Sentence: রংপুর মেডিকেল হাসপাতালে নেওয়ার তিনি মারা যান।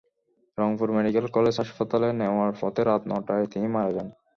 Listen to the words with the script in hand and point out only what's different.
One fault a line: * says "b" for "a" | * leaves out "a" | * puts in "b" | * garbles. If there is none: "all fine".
* puts in "কলেজ"
* puts in "পথে রাত নয়টায়"